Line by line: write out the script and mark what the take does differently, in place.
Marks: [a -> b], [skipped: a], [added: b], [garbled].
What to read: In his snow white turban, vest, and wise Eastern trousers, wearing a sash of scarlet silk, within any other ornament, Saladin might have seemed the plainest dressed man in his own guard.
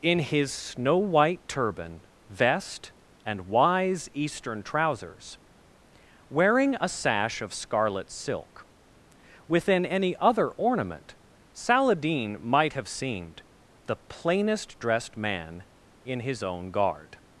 In his snow white turban, vest, and wise Eastern trousers, wearing a sash of scarlet silk, within any other ornament, Saladin might have seemed the plainest dressed man in his own guard.